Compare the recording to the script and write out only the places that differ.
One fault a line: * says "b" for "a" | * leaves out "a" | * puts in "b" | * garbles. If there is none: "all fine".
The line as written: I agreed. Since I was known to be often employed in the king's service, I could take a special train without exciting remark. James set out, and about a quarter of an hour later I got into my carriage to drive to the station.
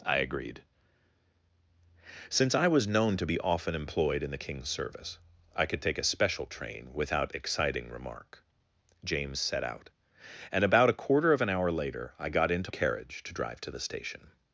* leaves out "my"